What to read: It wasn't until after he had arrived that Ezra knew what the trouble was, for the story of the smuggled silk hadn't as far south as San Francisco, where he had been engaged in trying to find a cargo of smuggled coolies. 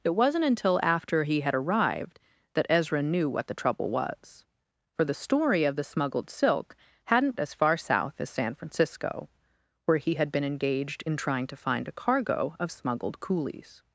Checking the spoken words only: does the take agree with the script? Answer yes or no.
yes